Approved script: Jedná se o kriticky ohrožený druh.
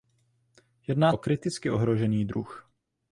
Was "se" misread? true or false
true